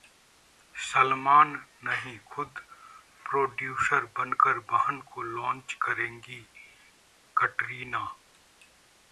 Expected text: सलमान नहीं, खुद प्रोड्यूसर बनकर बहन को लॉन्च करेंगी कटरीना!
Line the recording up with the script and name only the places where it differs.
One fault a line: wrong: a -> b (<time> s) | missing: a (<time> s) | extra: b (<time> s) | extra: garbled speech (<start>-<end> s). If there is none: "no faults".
no faults